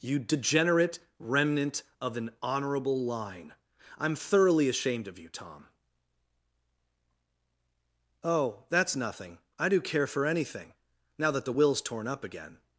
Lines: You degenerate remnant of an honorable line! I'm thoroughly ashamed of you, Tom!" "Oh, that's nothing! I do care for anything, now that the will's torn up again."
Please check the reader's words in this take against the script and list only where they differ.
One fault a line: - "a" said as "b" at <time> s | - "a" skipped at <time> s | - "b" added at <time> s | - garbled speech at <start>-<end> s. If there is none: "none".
none